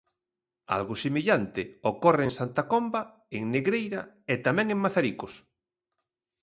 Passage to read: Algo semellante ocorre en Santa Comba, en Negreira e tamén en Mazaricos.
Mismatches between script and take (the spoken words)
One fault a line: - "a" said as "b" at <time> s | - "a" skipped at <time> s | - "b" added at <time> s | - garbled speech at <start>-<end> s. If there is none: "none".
none